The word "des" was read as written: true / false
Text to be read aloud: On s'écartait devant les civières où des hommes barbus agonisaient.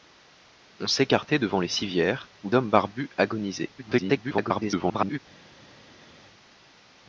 false